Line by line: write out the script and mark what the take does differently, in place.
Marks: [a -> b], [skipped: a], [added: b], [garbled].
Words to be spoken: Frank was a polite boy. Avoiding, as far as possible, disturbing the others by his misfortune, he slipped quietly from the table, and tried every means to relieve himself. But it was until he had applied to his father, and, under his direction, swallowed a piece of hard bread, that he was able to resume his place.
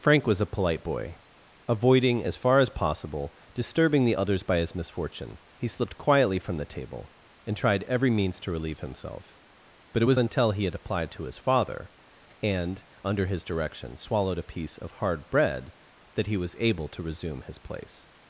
Frank was a polite boy. Avoiding, as far as possible, disturbing the others by his misfortune, he slipped quietly from the table, and tried every means to relieve himself. But it was until he had applied to his father, and, under his direction, swallowed a piece of hard bread, that he was able to resume his place.